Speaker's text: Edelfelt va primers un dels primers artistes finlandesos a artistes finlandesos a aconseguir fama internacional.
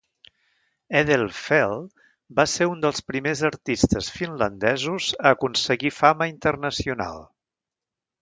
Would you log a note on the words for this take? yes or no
yes